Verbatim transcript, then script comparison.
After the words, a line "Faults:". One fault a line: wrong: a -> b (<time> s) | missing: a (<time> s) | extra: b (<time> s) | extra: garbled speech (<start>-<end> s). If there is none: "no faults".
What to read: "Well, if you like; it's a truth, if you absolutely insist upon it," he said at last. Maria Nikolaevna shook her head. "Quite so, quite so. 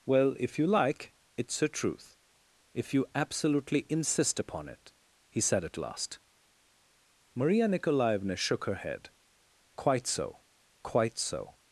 "Well, if you like; it's a truth, if you absolutely insist upon it," he said at last. Maria Nikolaevna shook her head. "Quite so, quite so.
Faults:
no faults